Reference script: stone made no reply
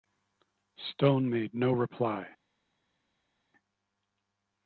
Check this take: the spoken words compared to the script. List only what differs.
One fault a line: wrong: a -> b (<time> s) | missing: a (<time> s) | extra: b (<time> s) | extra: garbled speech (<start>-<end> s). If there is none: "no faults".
no faults